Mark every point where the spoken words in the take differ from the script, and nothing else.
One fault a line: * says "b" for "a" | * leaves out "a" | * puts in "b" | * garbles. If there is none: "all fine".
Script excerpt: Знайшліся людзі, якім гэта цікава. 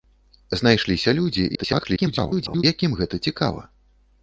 * garbles